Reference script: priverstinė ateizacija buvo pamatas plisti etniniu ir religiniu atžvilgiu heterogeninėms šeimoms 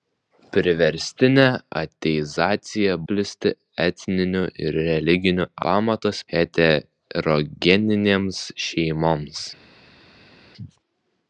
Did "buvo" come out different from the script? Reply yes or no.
yes